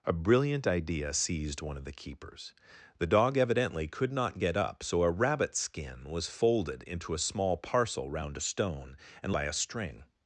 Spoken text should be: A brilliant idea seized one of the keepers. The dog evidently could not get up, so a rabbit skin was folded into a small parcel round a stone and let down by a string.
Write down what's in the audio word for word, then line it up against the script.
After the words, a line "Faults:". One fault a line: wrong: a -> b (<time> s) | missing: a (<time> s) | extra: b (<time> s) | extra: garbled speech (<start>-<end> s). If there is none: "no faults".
A brilliant idea seized one of the keepers. The dog evidently could not get up, so a rabbit skin was folded into a small parcel round a stone and by a string.
Faults:
missing: let down (9.3 s)